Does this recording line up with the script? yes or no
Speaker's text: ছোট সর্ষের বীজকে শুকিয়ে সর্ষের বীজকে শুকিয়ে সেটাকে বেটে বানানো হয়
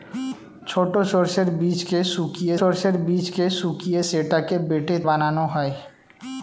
yes